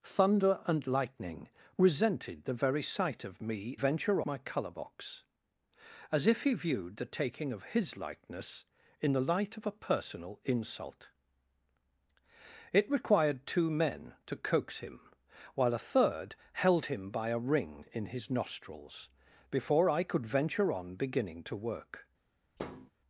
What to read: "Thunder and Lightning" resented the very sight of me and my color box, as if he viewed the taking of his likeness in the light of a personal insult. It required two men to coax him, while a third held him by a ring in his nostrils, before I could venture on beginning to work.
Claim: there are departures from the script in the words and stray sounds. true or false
true